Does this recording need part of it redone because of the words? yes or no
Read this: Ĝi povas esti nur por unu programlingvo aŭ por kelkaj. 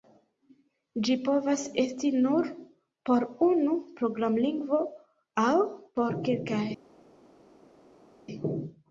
no